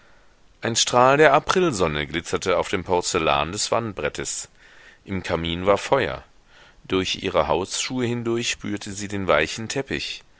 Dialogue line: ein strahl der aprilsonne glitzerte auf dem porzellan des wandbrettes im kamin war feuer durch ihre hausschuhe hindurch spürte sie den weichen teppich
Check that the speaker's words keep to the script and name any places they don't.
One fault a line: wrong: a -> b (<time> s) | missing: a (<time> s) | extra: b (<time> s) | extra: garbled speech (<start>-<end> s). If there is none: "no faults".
no faults